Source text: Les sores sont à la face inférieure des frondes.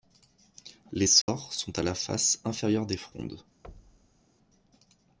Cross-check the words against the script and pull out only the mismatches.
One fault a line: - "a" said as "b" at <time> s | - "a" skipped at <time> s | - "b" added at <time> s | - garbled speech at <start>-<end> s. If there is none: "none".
none